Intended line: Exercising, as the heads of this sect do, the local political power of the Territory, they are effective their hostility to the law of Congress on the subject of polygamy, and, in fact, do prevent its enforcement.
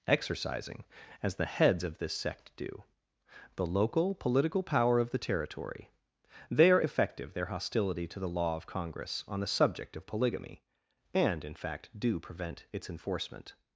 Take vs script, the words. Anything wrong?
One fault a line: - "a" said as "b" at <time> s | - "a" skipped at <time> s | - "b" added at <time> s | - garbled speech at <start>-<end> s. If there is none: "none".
none